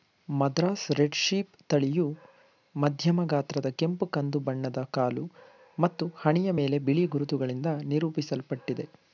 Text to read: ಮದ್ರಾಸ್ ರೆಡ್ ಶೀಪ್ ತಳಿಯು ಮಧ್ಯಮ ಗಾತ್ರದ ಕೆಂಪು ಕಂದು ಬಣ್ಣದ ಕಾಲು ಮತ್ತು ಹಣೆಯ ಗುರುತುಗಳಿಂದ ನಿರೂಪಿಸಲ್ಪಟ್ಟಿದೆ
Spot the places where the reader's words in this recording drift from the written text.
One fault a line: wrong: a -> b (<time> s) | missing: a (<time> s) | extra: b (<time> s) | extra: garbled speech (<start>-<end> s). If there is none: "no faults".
extra: ಮೇಲೆ ಬಿಳಿ (6.6 s)